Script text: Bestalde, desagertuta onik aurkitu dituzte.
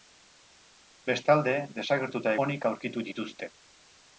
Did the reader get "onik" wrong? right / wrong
right